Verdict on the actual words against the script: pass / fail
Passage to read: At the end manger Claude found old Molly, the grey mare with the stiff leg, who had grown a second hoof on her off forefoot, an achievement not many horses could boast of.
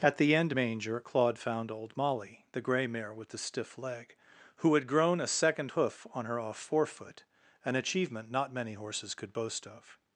pass